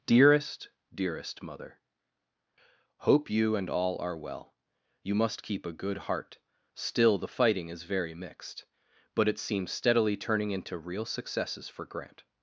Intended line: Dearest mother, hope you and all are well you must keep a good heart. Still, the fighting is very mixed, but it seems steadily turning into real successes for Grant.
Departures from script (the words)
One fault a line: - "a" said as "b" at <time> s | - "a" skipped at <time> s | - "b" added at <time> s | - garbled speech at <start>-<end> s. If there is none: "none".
- "dearest" added at 0.9 s